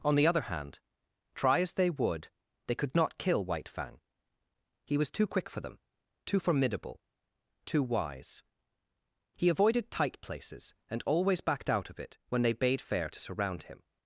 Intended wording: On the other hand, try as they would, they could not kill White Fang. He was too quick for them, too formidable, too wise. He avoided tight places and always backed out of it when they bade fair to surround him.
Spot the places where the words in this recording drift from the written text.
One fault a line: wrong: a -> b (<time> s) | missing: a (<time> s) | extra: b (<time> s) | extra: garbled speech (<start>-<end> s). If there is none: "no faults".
no faults